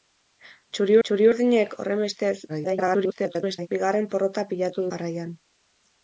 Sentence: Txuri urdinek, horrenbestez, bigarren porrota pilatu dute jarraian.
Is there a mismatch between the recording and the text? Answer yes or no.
yes